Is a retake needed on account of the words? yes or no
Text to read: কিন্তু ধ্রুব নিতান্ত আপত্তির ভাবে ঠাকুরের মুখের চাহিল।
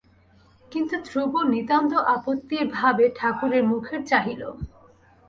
no